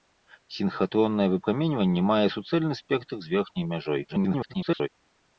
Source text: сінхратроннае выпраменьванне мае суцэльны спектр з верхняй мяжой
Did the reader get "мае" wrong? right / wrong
right